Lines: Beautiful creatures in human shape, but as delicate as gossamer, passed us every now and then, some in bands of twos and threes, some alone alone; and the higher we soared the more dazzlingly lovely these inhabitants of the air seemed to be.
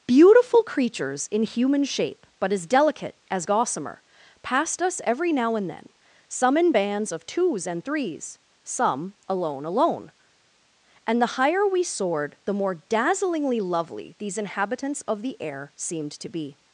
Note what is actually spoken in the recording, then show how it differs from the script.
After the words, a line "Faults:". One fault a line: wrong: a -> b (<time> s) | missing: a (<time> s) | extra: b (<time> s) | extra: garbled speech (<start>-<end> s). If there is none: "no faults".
Beautiful creatures in human shape, but as delicate as gossamer, passed us every now and then, some in bands of twos and threes, some alone alone; and the higher we soared the more dazzlingly lovely these inhabitants of the air seemed to be.
Faults:
no faults